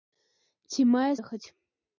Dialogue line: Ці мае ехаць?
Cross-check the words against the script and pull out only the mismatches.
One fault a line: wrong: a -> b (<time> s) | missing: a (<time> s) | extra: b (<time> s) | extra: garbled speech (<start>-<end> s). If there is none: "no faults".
no faults